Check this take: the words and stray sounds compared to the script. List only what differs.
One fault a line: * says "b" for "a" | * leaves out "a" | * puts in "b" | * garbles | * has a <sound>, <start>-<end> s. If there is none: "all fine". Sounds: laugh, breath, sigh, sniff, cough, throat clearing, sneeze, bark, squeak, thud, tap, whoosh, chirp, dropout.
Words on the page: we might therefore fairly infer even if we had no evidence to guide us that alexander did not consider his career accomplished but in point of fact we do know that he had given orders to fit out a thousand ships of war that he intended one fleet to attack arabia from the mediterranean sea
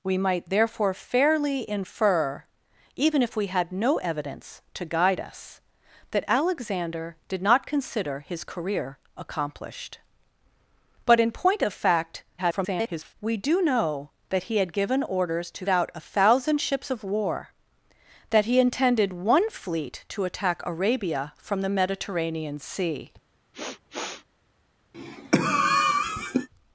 * garbles
* leaves out "fit"
* has a sniff, 23.5-24.3 s
* has a cough, 24.9-26.5 s